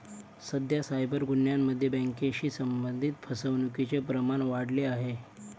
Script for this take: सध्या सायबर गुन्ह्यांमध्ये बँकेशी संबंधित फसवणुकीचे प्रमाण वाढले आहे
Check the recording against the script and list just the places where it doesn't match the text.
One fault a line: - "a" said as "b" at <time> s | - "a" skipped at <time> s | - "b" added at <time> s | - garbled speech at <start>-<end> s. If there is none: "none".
none